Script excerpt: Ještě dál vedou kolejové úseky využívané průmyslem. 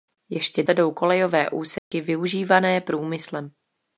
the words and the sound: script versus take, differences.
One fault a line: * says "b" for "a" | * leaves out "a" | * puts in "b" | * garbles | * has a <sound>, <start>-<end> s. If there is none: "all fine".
* leaves out "dál"
* has a dropout, 1.8-1.9 s